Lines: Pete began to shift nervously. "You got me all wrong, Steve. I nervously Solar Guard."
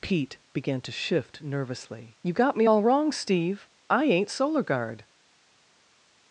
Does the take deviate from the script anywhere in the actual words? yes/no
yes